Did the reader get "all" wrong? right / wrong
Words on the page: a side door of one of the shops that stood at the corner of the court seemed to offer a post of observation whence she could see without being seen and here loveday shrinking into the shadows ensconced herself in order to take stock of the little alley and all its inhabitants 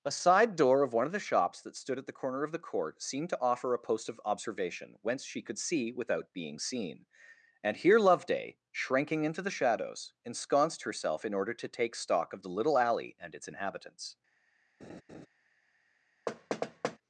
wrong